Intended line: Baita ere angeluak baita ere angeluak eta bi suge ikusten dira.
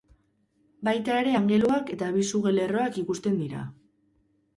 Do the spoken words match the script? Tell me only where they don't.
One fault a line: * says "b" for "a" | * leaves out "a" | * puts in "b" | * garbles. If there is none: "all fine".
* leaves out "baita ere angeluak"
* puts in "lerroak"